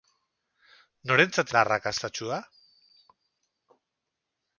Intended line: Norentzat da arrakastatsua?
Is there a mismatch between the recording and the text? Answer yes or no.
no